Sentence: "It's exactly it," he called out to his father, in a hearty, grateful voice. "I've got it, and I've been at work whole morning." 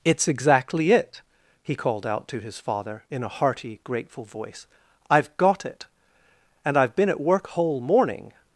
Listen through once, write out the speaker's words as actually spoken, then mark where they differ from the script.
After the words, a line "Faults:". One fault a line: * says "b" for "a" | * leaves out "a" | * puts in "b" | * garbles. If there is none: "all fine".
"It's exactly it," he called out to his father, in a hearty, grateful voice. "I've got it, and I've been at work whole morning."
Faults:
all fine